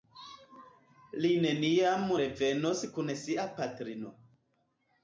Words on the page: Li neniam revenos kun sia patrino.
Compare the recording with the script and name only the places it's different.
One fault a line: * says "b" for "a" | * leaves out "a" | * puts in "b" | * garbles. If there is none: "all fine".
all fine